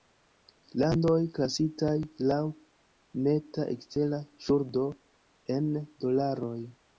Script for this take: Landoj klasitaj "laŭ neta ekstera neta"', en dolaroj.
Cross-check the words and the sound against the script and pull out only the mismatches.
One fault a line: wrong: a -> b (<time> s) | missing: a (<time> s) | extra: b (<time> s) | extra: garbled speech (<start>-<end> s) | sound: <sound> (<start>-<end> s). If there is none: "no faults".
wrong: neta -> ŝuldo (4.5 s)